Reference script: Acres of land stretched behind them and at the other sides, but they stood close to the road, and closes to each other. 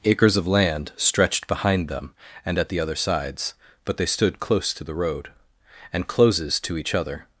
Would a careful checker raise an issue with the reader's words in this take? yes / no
no